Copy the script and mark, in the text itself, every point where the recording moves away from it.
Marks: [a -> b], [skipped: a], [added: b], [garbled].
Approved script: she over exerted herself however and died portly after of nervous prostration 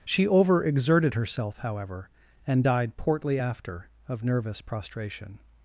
she over exerted herself however and died portly after of nervous prostration